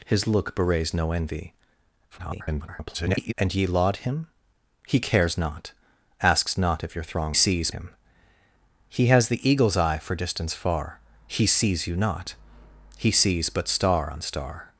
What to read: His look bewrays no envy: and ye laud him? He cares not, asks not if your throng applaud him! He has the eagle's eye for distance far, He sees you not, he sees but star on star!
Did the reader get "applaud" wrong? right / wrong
wrong